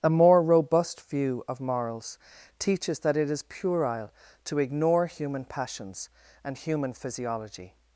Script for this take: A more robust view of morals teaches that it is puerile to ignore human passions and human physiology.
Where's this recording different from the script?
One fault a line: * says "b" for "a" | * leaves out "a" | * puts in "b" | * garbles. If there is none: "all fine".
all fine